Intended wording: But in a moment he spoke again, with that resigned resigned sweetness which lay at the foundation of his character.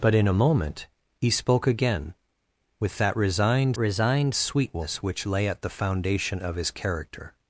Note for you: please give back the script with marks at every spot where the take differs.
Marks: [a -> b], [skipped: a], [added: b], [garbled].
But in a moment he spoke again, with that resigned resigned sweetness which lay at the foundation of his character.